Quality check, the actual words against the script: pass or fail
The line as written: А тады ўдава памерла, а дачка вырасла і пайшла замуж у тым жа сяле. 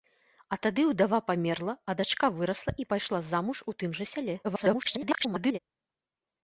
fail